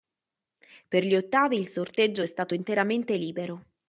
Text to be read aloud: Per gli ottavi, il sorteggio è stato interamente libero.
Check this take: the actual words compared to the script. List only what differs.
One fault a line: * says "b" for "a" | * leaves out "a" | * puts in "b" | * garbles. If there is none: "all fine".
all fine